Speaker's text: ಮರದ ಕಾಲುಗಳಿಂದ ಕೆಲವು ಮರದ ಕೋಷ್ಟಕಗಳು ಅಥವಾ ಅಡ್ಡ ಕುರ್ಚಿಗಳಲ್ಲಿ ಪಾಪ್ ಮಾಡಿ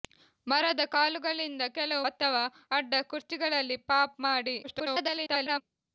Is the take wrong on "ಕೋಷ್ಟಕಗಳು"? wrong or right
wrong